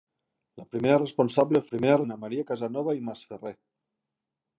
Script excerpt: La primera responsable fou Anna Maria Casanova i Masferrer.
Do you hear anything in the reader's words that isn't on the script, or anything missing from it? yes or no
yes